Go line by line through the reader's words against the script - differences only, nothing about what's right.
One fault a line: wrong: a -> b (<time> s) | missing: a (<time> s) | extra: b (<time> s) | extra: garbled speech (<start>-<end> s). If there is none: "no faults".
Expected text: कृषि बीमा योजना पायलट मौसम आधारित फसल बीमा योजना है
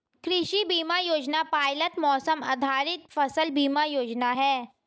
no faults